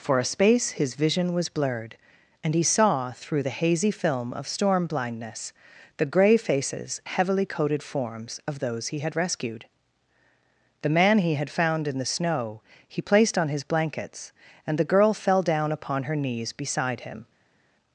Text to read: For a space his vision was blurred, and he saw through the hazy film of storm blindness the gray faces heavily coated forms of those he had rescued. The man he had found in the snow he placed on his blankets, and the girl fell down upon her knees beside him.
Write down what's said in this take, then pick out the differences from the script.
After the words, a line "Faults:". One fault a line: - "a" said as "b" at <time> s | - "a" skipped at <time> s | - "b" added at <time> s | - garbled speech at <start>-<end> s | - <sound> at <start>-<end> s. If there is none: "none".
For a space his vision was blurred, and he saw through the hazy film of storm blindness the gray faces heavily coated forms of those he had rescued. The man he had found in the snow he placed on his blankets, and the girl fell down upon her knees beside him.
Faults:
none